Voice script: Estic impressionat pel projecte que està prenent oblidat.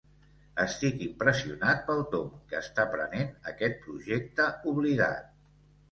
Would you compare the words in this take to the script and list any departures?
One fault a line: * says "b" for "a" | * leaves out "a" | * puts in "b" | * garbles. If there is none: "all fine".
* says "tomb" for "projecte"
* puts in "aquest projecte"